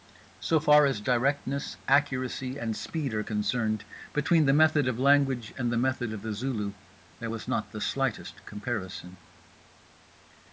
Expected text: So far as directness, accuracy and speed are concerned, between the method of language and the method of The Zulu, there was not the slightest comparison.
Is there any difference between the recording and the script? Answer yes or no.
no